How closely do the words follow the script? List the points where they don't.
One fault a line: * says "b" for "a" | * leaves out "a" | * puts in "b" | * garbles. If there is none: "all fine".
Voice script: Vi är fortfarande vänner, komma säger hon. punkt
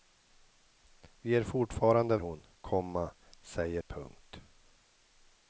* says "hon" for "vänner"
* leaves out "hon"